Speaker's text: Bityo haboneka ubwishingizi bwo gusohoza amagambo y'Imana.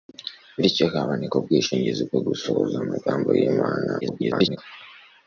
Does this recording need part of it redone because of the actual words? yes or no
yes